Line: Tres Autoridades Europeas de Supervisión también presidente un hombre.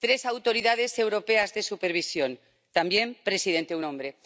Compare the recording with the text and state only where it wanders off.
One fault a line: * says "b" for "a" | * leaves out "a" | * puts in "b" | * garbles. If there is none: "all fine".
all fine